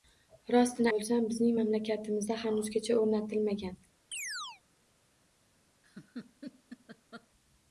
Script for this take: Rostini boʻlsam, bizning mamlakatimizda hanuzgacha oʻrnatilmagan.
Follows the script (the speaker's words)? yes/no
yes